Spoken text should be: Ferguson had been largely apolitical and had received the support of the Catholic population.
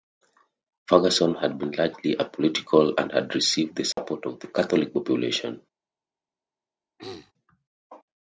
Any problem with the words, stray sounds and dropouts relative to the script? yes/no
yes